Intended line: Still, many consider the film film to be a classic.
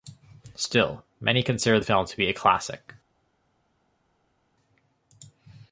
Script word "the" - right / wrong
right